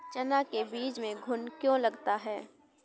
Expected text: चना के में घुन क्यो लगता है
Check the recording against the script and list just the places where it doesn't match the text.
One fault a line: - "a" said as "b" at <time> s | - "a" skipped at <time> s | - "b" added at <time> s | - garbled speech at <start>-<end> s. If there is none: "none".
- "बीज" added at 0.6 s